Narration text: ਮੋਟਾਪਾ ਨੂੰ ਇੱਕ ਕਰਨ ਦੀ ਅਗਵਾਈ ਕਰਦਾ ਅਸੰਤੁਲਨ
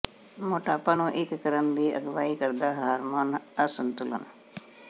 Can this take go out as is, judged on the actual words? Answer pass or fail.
fail